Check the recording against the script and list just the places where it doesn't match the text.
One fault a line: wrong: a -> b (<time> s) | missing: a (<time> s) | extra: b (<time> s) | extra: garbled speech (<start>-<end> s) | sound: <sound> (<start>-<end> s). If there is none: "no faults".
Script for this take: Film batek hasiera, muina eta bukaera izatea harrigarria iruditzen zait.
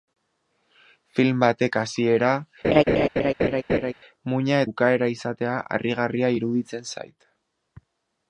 sound: laugh (2.6-3.9 s)
missing: eta (4.6 s)